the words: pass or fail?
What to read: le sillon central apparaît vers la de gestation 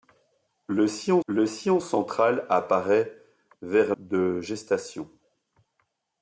fail